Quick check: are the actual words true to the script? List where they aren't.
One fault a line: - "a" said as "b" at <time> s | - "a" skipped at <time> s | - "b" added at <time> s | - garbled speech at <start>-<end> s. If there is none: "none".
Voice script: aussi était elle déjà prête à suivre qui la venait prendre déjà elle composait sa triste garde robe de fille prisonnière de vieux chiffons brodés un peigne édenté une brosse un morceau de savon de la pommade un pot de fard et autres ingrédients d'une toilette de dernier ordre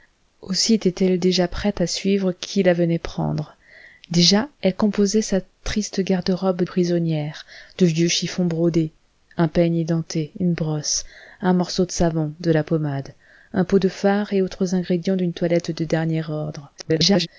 - "de fille" skipped at 6.6 s
- garbled speech at 16.8-17.3 s